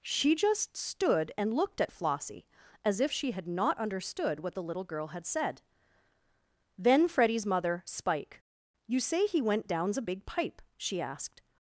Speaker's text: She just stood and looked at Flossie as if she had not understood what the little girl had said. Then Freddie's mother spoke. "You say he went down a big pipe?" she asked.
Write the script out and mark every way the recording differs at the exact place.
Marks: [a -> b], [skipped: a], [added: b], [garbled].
She just stood and looked at Flossie as if she had not understood what the little girl had said. Then Freddie's mother [spoke. -> spike] "You say he went [down -> downs] a big pipe?" she asked.